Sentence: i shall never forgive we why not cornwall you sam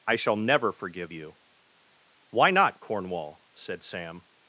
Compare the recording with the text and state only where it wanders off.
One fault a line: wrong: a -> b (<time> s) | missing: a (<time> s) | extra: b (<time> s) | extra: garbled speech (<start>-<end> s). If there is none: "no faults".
wrong: we -> you (1.1 s)
wrong: you -> said (3.5 s)